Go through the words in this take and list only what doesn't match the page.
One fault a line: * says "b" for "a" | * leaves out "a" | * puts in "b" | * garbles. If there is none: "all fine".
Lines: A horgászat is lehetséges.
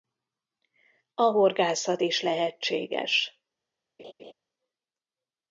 all fine